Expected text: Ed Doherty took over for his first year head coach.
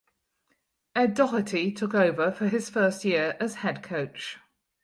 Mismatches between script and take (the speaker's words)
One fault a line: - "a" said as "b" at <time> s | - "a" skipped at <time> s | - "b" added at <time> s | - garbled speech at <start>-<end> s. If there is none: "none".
- "as" added at 3.4 s